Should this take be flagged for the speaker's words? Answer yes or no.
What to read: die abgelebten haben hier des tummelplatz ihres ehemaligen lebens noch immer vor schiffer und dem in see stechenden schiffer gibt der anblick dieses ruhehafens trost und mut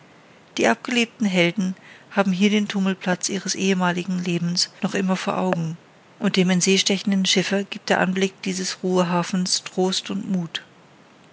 yes